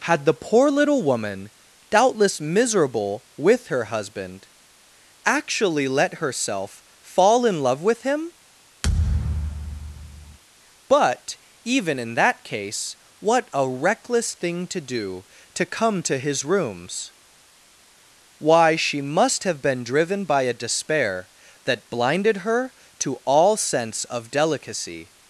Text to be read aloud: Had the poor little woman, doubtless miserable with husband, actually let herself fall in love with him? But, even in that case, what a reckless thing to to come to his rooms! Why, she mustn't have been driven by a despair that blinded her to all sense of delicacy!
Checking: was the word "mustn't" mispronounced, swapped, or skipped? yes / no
yes